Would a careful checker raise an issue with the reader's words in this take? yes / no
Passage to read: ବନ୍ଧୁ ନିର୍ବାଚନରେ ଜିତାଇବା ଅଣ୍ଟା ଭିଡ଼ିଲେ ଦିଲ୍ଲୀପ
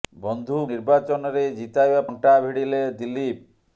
no